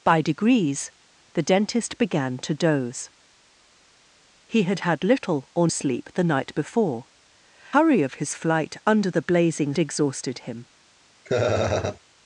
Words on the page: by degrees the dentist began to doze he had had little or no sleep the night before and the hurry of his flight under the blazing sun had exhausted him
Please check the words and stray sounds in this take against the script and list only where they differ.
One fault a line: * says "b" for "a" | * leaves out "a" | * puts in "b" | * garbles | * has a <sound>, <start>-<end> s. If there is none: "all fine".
* leaves out "no"
* leaves out "and the"
* leaves out "sun had"
* has a laugh, 11.3-12.0 s